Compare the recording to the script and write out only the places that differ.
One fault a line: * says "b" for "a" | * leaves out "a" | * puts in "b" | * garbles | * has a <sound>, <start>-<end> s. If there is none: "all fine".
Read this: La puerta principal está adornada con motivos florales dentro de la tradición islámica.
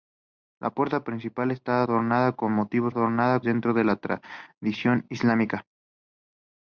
* says "adornada" for "florales"